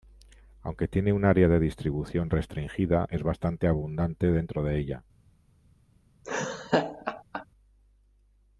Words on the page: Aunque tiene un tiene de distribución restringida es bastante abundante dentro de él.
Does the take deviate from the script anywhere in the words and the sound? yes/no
yes